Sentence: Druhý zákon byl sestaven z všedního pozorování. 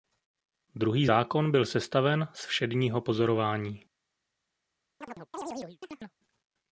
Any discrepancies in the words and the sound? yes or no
yes